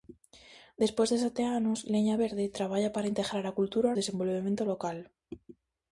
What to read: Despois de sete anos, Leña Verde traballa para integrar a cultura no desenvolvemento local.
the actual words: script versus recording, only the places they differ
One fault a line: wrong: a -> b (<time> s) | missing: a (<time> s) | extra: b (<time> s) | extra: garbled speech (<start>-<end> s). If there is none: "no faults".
missing: no (3.9 s)